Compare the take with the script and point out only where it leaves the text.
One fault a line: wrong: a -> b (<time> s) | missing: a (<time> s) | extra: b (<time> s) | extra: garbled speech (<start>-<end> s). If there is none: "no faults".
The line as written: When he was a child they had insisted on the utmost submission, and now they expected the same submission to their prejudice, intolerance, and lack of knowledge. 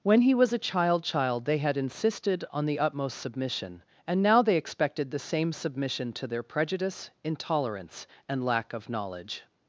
extra: child (1.0 s)